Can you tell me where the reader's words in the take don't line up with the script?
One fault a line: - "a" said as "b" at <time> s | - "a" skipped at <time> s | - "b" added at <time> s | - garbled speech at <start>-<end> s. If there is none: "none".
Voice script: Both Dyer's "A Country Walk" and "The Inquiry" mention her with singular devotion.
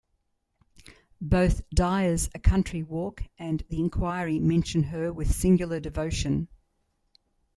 none